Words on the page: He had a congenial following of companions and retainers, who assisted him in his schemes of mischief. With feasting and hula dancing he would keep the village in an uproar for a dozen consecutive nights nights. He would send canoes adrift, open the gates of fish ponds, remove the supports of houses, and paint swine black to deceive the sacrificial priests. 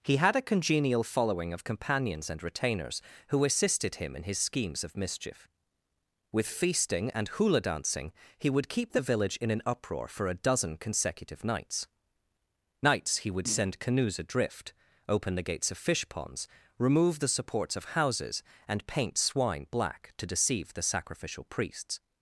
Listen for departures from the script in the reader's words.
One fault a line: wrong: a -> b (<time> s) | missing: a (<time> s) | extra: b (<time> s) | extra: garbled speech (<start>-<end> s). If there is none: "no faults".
no faults